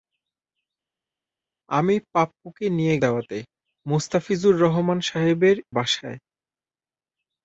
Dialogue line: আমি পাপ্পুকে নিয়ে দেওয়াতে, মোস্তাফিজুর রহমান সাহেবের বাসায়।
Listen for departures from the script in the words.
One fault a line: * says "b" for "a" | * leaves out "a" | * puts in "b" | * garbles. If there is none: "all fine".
all fine